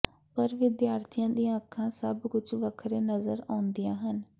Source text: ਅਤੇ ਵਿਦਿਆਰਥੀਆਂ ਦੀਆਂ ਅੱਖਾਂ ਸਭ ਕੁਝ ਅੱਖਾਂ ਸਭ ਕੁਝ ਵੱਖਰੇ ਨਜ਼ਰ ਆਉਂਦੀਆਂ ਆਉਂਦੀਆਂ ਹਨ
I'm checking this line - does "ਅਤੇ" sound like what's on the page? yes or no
no